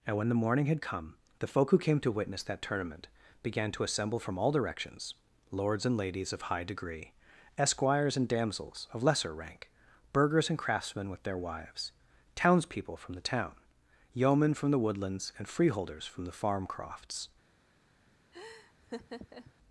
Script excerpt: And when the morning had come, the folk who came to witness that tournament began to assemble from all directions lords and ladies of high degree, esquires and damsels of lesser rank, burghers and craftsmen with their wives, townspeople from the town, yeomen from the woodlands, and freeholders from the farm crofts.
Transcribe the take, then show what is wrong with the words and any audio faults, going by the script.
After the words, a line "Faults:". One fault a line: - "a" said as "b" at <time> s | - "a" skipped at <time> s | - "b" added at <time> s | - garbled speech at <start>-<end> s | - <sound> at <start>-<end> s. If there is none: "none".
And when the morning had come, the folk who came to witness that tournament began to assemble from all directions lords and ladies of high degree, esquires and damsels of lesser rank, burghers and craftsmen with their wives, townspeople from the town, yeomen from the woodlands, and freeholders from the farm crofts.
Faults:
- laugh at 18.3-19.5 s